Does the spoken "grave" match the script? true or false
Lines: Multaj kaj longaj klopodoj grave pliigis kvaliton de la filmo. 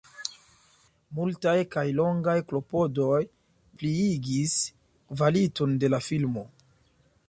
false